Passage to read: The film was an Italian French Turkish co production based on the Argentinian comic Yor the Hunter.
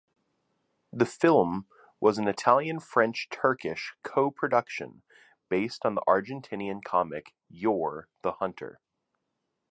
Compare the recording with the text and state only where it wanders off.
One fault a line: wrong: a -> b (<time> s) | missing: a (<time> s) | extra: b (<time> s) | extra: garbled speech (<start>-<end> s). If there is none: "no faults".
no faults